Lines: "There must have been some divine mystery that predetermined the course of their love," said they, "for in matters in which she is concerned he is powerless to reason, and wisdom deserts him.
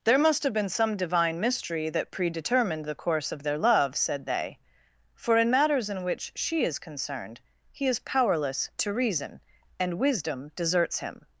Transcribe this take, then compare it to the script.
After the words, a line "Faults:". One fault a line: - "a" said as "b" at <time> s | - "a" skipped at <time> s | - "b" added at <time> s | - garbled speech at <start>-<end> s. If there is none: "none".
"There must have been some divine mystery that predetermined the course of their love," said they, "for in matters in which she is concerned he is powerless to reason, and wisdom deserts him.
Faults:
none